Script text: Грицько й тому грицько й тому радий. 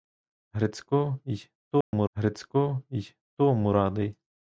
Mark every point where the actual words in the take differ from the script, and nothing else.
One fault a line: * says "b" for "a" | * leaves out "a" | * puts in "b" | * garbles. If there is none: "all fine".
all fine